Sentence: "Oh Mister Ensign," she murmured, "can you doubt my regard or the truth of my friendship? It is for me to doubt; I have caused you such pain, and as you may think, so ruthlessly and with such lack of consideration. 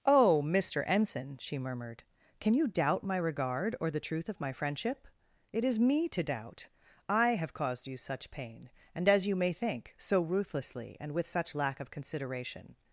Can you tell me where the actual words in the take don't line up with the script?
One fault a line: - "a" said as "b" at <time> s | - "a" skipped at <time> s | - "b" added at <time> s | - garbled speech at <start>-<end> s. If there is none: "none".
- "for" skipped at 5.8 s